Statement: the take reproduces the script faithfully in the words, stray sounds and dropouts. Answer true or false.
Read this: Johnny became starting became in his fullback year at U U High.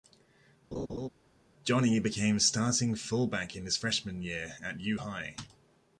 false